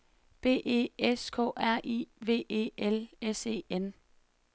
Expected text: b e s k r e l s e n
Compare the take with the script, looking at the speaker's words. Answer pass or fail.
fail